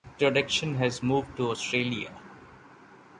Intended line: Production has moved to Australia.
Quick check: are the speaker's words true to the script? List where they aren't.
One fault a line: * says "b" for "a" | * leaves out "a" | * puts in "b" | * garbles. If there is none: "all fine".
all fine